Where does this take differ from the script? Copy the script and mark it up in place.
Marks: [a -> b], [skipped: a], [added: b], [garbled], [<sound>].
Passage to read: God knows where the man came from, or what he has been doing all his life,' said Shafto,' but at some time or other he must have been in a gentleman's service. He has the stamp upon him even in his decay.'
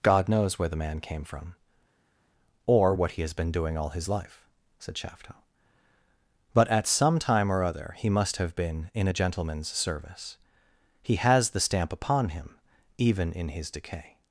God knows where the man came from, or what he has been doing all his life,' said Shafto,' but at some time or other he must have been in a gentleman's service. He has the stamp upon him even in his decay.'